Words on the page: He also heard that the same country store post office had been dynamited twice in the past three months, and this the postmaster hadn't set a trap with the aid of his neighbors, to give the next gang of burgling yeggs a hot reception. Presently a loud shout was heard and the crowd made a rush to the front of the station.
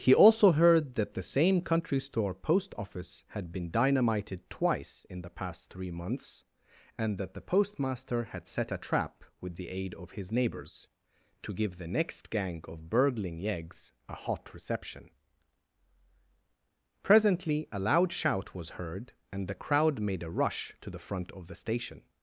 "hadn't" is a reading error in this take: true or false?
true